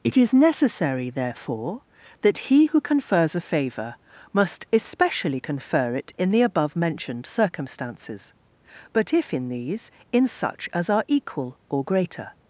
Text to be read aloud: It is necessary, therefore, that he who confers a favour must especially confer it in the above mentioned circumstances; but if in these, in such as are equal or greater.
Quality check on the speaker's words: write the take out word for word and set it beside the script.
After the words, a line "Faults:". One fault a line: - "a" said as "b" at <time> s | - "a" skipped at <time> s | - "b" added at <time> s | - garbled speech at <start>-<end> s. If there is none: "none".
It is necessary, therefore, that he who confers a favour must especially confer it in the above mentioned circumstances; but if in these, in such as are equal or greater.
Faults:
none